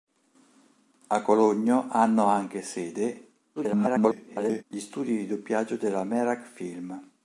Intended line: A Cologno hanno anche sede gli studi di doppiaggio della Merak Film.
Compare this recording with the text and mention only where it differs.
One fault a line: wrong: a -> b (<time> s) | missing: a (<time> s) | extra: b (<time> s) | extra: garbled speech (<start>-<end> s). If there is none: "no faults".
extra: garbled speech (3.6-4.6 s)